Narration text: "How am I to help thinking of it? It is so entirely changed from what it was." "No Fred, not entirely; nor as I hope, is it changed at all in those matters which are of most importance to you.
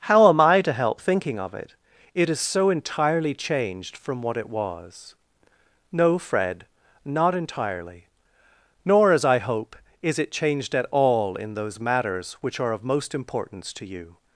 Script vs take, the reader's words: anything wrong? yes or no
no